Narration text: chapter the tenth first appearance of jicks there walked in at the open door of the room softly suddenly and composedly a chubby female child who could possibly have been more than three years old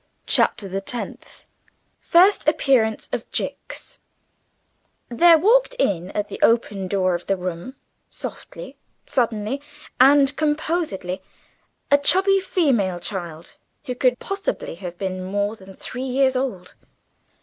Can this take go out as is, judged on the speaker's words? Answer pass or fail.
pass